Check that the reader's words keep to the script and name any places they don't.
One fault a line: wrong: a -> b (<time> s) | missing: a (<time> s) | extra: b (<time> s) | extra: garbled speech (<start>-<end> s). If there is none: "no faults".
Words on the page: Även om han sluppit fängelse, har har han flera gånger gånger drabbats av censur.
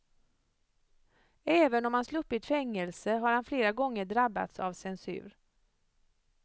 missing: har (3.3 s)
missing: gånger (4.0 s)